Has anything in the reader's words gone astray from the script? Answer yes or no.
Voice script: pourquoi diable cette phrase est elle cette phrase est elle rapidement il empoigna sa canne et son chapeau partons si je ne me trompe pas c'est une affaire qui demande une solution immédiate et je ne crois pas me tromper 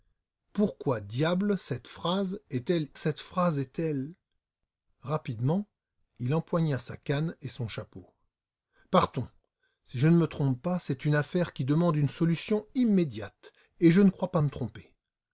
no